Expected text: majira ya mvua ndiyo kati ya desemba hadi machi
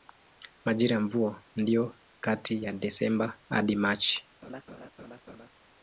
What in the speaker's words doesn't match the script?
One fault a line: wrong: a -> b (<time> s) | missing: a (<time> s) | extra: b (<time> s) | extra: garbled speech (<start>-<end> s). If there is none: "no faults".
no faults